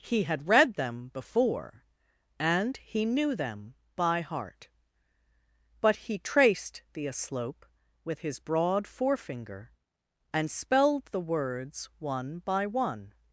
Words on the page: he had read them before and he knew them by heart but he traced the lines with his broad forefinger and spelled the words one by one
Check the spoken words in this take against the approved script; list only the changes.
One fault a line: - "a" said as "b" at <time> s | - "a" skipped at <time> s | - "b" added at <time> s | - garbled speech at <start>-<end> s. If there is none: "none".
- "lines" said as "aslope" at 7.0 s